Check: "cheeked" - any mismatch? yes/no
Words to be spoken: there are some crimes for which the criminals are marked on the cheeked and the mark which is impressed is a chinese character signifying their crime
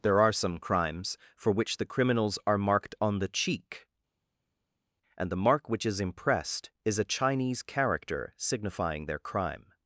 yes